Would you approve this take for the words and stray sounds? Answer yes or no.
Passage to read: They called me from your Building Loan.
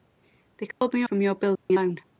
no